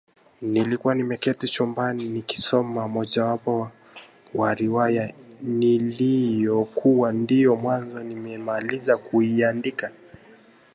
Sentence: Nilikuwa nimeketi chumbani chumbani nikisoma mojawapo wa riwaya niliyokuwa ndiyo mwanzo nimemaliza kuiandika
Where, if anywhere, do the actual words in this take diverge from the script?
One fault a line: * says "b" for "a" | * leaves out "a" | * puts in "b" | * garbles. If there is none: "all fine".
* leaves out "chumbani"